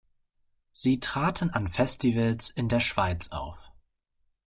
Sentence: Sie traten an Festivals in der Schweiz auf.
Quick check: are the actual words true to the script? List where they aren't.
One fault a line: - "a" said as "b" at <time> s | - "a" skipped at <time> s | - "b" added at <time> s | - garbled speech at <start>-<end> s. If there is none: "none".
none